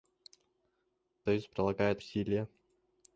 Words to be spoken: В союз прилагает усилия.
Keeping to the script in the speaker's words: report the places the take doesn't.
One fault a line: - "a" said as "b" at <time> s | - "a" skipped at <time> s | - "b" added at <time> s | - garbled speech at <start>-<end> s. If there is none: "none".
none